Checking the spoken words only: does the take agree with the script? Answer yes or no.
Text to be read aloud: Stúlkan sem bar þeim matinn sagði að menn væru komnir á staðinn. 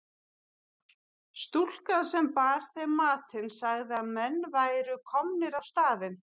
yes